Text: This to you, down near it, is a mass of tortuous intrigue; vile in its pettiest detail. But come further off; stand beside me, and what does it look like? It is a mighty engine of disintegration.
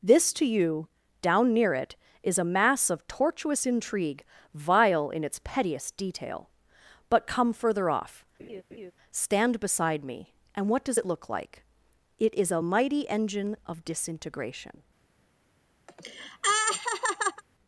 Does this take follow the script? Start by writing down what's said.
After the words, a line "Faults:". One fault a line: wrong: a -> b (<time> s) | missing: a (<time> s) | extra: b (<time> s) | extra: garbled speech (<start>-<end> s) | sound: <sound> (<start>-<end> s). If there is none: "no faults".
This to you, down near it, is a mass of tortuous intrigue; vile in its pettiest detail. But come further off; stand beside me, and what does it look like? It is a mighty engine of disintegration.
Faults:
sound: laugh (8.4-8.9 s)
sound: laugh (15.9-17.4 s)